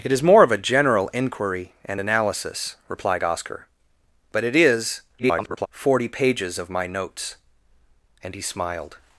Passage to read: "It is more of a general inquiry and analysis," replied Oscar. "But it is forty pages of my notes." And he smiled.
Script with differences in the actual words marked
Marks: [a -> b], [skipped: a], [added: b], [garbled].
"It is more of a general inquiry and analysis," replied Oscar. "But it is [garbled] forty pages of my notes." And he smiled.